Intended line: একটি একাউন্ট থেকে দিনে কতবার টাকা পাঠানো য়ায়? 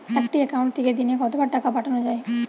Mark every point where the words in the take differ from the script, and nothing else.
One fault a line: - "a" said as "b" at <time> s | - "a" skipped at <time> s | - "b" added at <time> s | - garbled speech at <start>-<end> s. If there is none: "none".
none